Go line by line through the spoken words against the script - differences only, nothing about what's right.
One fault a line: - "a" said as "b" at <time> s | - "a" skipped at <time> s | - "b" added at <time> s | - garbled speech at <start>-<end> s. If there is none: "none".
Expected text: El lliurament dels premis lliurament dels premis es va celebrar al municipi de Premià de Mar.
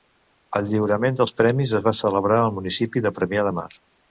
- "lliurament dels premis" skipped at 1.8 s